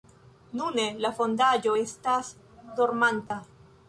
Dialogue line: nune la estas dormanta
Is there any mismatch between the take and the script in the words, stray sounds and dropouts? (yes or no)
yes